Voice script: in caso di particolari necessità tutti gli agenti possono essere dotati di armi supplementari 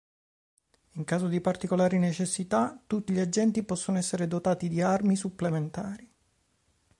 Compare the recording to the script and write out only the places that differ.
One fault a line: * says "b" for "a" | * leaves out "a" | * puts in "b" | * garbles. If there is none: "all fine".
all fine